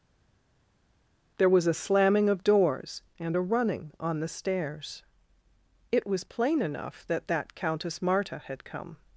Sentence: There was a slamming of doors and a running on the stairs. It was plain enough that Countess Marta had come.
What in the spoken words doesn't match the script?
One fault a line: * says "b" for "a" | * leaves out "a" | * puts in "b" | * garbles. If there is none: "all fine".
* puts in "that"